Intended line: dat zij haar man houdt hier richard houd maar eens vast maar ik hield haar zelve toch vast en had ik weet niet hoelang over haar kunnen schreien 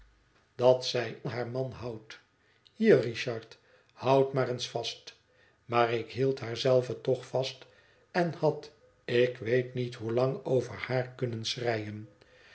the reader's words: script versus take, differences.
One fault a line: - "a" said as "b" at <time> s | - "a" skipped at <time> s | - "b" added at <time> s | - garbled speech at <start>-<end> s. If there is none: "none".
none